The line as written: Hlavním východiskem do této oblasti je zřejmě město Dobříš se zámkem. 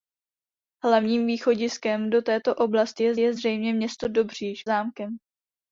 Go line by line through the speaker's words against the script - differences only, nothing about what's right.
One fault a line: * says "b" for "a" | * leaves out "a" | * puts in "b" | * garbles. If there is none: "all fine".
* puts in "je"
* leaves out "se"